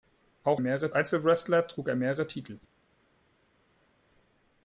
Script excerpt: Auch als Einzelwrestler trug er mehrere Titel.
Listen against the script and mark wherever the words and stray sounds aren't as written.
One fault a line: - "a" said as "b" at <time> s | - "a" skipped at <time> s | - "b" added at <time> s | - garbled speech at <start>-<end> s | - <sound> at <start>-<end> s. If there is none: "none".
- "als" said as "mehrere" at 0.6 s